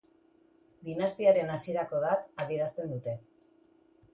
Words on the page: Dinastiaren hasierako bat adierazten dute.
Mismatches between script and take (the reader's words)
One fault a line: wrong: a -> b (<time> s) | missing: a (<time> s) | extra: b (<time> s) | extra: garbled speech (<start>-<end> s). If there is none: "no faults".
no faults